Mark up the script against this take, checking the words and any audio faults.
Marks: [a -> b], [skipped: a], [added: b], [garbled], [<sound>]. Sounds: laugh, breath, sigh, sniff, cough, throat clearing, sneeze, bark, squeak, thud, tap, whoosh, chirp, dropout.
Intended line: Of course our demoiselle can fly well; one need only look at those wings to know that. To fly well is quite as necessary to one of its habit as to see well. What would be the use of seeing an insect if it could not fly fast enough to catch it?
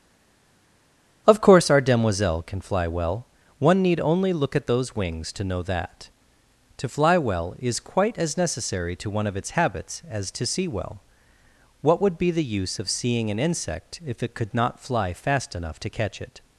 Of course our demoiselle can fly well; one need only look at those wings to know that. To fly well is quite as necessary to one of its [habit -> habits] as to see well. What would be the use of seeing an insect if it could not fly fast enough to catch it?